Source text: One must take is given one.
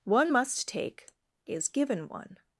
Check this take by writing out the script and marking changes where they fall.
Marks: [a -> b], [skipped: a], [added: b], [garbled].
One must take is given one.